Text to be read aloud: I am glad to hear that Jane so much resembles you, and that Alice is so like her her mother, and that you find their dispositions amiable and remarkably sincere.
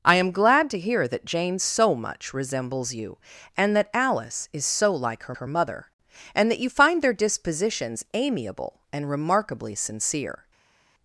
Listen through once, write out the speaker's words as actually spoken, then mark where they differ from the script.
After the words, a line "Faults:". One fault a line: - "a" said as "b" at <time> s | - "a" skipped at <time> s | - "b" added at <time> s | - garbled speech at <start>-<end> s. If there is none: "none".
I am glad to hear that Jane so much resembles you, and that Alice is so like her her mother, and that you find their dispositions amiable and remarkably sincere.
Faults:
none